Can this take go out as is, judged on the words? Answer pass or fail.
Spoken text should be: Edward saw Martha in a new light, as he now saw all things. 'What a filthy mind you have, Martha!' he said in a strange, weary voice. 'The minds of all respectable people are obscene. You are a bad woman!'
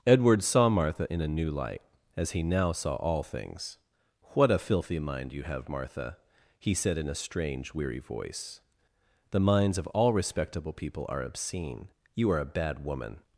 pass